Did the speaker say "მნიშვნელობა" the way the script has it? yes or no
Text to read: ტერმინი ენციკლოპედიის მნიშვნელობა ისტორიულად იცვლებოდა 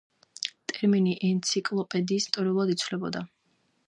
no